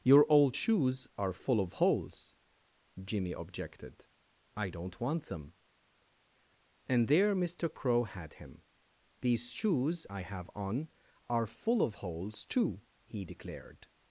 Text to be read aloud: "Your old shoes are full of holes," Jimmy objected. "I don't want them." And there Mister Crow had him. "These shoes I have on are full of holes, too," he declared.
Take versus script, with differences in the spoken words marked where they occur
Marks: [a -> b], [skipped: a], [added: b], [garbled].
"Your old shoes are full of holes," Jimmy objected. "I don't want them." And there Mister Crow had him. "These shoes I have on are full of holes, too," he declared.